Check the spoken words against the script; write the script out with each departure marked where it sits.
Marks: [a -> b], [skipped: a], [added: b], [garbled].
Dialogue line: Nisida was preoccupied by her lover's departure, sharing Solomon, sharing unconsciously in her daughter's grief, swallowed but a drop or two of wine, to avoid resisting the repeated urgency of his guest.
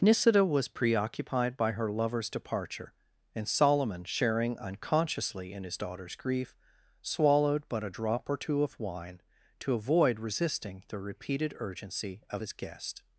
Nisida was preoccupied by her lover's departure, [sharing -> and] Solomon, sharing unconsciously in [her -> his] daughter's grief, swallowed but a drop or two of wine, to avoid resisting the repeated urgency of his guest.